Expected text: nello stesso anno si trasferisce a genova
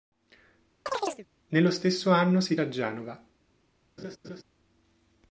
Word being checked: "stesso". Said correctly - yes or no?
yes